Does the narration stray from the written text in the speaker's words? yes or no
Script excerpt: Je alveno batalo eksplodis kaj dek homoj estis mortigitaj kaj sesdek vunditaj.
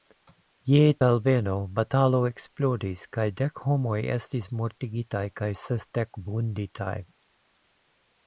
no